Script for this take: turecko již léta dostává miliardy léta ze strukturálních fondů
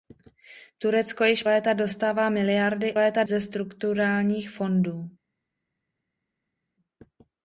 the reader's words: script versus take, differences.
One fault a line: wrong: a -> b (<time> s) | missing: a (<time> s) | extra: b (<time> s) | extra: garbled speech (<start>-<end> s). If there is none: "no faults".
no faults